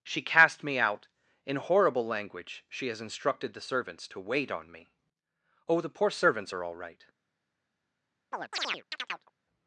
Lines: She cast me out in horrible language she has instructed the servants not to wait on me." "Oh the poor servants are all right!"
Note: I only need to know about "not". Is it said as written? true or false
false